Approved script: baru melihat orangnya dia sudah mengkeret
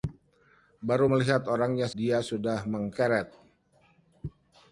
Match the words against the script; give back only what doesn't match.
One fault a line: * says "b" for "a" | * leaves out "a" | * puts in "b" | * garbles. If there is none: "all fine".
all fine